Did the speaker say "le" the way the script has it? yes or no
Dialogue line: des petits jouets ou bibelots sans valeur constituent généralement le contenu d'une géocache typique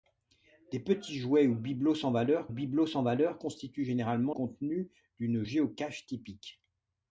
no